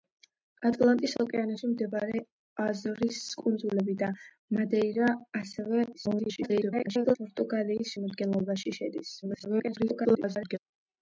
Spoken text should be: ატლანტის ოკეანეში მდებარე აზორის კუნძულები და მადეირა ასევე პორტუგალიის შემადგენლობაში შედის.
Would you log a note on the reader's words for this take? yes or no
yes